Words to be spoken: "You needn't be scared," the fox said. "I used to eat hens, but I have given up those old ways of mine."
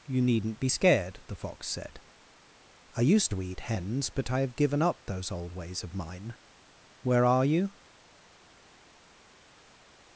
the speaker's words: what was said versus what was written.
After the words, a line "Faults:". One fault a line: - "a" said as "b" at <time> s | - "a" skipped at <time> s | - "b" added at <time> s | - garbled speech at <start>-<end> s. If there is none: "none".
"You needn't be scared," the fox said. "I used to eat hens, but I have given up those old ways of mine." "Where are you
Faults:
- "Where are you" added at 7.0 s